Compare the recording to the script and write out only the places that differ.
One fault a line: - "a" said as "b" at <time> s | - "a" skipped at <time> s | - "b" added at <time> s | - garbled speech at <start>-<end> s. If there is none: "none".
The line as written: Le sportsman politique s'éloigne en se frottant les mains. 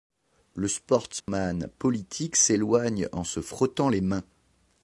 none